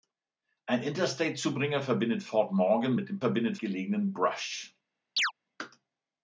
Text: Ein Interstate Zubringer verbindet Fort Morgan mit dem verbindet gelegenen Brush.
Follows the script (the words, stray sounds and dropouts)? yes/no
no